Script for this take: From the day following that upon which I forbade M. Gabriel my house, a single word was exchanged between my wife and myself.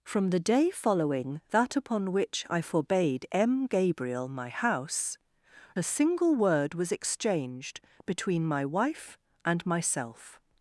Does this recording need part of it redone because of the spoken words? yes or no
no